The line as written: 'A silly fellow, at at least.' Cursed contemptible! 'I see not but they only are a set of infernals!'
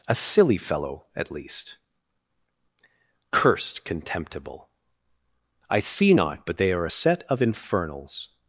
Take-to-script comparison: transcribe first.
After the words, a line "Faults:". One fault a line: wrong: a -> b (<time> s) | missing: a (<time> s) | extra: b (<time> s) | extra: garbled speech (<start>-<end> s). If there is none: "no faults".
'A silly fellow, at least.' Cursed contemptible! 'I see not but they are a set of infernals!'
Faults:
missing: at (1.3 s)
missing: only (6.7 s)